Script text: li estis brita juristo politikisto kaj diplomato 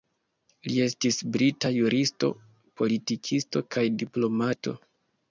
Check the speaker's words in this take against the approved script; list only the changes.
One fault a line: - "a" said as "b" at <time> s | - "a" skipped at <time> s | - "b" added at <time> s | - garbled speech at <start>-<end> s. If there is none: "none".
none